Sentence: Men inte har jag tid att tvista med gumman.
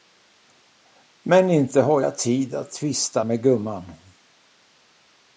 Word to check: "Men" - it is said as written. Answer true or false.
true